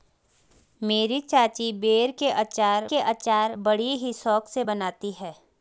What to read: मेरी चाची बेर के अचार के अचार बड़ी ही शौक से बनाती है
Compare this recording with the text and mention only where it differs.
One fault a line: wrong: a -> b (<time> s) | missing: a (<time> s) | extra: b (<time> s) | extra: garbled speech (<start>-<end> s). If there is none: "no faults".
no faults